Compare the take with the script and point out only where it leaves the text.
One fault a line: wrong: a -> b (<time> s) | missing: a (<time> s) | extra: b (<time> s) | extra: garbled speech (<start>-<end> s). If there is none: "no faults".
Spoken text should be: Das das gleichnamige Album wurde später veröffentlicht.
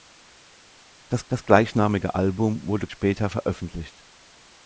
no faults